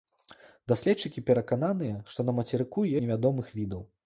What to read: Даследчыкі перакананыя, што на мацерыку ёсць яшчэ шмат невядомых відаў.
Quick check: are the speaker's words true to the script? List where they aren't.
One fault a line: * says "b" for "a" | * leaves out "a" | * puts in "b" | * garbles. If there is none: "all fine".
* leaves out "ёсць яшчэ шмат"